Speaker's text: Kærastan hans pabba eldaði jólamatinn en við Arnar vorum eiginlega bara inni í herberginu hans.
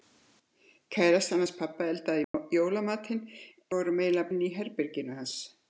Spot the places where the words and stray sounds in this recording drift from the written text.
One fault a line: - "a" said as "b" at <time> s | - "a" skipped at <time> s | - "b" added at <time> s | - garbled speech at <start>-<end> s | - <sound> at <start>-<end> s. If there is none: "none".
- dropout at 2.2-2.3 s
- "en við Arnar" skipped at 3.2 s
- "bara" skipped at 4.3 s